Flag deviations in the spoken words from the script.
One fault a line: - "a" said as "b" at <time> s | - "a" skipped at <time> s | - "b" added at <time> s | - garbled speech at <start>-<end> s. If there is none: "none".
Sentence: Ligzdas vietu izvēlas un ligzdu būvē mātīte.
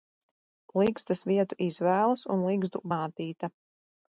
- "būvē" skipped at 2.8 s